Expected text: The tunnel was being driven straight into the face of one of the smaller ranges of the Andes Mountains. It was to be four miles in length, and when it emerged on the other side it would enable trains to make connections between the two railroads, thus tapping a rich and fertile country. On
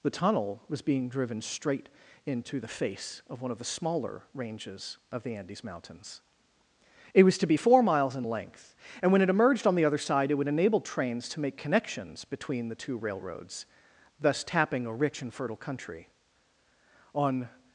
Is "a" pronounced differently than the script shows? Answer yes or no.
no